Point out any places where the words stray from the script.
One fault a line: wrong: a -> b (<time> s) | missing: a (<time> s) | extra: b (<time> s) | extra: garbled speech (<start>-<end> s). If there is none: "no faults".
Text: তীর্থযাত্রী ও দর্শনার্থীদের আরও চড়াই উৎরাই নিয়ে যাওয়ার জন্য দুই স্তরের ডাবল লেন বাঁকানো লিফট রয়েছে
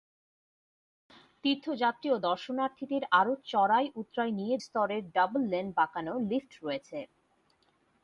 missing: যাওয়ার জন্য দুই (4.6 s)